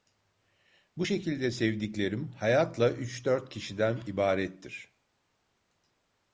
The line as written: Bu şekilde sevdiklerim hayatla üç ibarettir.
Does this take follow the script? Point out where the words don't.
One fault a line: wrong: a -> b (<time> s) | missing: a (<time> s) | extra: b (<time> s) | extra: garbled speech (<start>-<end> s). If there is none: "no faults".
extra: dört kişiden (3.2 s)